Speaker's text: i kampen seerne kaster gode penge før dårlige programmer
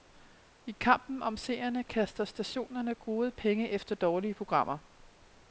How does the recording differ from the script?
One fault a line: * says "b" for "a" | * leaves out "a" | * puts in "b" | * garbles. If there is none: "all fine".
* puts in "om"
* puts in "stationerne"
* says "efter" for "før"